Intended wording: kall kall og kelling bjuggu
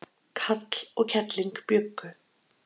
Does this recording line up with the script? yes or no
no